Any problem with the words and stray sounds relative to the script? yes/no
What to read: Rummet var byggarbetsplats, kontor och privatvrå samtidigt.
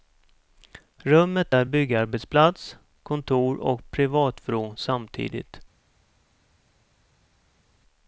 yes